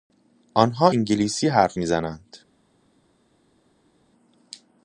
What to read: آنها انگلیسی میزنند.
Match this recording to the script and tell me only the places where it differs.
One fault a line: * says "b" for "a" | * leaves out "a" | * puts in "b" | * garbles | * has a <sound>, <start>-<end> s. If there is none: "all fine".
* puts in "حرف"